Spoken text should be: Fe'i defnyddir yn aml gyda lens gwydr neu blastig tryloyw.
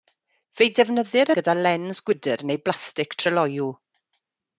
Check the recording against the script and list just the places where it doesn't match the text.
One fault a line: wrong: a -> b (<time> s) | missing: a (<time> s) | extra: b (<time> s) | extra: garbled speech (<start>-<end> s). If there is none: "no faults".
missing: yn aml (1.3 s)